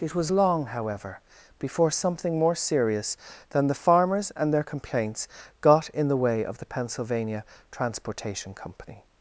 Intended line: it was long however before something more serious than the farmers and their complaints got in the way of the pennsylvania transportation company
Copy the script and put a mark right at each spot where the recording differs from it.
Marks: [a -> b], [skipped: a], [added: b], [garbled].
it was long however before something more serious than the farmers and their complaints got in the way of the pennsylvania transportation company